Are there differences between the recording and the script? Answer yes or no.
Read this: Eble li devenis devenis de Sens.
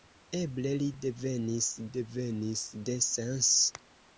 no